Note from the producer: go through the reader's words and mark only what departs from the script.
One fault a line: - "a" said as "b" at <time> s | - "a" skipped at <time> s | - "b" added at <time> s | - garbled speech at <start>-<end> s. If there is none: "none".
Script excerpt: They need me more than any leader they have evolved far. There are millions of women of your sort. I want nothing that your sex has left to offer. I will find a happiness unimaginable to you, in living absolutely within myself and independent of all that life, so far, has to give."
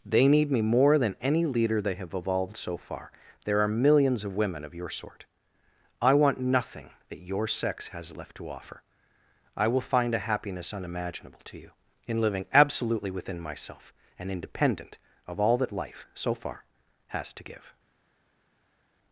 - "so" added at 2.6 s